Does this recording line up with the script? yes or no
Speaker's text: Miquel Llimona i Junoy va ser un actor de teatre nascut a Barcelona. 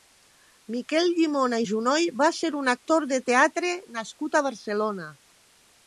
yes